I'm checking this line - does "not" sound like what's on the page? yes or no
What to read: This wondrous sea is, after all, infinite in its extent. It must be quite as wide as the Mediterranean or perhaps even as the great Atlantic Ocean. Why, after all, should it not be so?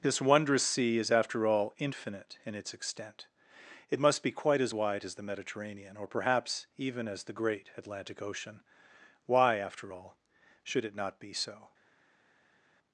yes